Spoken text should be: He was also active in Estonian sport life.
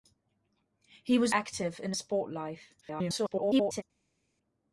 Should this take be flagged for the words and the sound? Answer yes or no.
yes